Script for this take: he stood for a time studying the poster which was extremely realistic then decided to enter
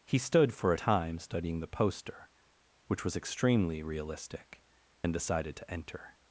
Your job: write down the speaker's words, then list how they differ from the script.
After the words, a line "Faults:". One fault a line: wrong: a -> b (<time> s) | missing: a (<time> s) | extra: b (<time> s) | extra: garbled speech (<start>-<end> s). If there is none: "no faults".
he stood for a time studying the poster which was extremely realistic then decided to enter
Faults:
no faults